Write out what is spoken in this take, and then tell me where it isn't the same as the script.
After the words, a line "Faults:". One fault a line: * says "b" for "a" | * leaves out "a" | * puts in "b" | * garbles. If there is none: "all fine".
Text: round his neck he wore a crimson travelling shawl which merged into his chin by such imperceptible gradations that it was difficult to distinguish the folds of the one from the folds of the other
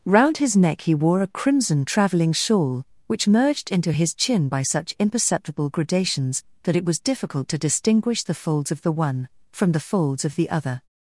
round his neck he wore a crimson travelling shawl which merged into his chin by such imperceptible gradations that it was difficult to distinguish the folds of the one from the folds of the other
Faults:
all fine